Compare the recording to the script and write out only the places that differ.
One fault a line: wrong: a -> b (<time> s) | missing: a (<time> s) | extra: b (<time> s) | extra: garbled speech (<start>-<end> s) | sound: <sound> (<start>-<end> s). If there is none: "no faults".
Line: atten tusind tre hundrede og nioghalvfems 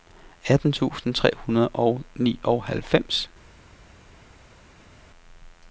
no faults